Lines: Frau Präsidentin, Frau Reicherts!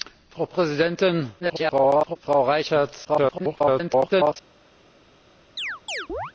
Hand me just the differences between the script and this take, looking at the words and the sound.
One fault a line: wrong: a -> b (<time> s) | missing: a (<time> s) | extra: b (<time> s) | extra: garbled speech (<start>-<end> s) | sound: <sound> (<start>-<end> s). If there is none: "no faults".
extra: garbled speech (1.4-2.2 s)
extra: garbled speech (3.0-4.4 s)
sound: chirp (5.6-6.3 s)